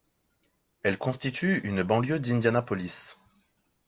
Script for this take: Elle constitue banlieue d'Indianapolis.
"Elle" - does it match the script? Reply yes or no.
yes